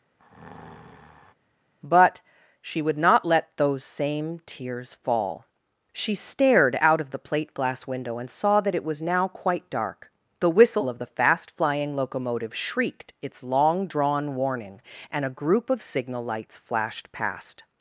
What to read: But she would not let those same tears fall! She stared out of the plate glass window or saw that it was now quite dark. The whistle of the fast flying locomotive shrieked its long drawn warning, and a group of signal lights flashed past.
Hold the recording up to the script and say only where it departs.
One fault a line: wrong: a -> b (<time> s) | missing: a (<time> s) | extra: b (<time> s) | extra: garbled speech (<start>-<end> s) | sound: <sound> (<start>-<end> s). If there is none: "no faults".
sound: breath (0.2-1.3 s)
wrong: or -> and (8.2 s)